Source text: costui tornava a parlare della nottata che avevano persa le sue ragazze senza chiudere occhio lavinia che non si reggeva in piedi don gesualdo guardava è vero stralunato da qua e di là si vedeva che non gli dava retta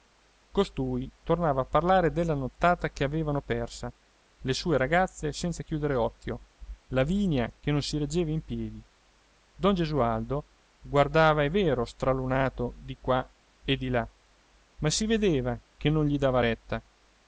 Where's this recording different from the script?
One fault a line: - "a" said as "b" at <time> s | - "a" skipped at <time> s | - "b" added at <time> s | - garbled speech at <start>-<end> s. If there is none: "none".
- "da" said as "di" at 12.8 s
- "ma" added at 14.8 s